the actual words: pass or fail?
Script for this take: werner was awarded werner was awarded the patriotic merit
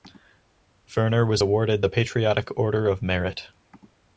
fail